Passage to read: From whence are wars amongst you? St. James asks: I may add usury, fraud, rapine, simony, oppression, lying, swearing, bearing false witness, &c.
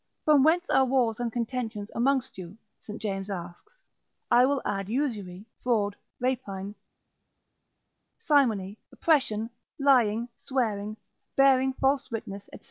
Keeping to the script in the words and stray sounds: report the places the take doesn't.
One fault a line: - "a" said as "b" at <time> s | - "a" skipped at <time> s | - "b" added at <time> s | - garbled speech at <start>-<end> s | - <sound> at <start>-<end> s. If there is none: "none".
- "and contentions" added at 1.2 s
- "may" said as "will" at 4.4 s